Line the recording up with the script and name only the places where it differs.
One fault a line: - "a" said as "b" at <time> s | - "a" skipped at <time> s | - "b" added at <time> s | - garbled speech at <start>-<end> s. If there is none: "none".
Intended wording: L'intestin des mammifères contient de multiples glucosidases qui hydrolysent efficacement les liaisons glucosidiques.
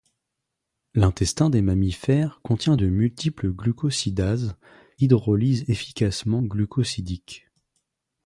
- "qui" skipped at 4.5 s
- "les liaisons" skipped at 6.4 s